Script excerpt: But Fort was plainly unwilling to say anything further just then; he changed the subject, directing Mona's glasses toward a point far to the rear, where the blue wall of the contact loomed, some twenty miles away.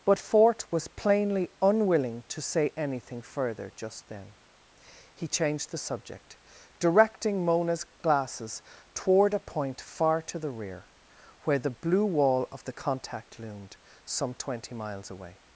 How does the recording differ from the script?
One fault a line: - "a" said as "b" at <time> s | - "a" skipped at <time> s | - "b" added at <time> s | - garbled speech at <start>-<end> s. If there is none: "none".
none